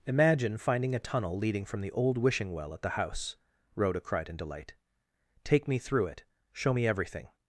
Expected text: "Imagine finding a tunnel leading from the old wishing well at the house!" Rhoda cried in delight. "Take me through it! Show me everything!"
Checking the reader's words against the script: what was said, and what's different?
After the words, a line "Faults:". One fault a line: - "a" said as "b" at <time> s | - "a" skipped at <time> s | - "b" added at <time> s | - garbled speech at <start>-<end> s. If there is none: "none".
"Imagine finding a tunnel leading from the old wishing well at the house!" Rhoda cried in delight. "Take me through it! Show me everything!"
Faults:
none